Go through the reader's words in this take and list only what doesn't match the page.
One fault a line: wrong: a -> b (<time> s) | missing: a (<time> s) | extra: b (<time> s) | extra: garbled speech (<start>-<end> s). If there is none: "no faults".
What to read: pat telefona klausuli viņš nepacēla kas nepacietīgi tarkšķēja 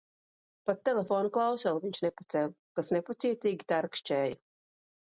no faults